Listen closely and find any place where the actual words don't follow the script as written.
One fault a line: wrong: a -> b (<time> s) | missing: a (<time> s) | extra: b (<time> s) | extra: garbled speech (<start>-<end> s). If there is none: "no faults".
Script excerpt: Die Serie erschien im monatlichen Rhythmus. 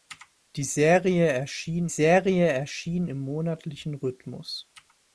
extra: Serie erschien (1.9 s)